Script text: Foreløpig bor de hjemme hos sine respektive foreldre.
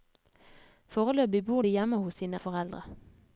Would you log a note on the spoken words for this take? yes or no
yes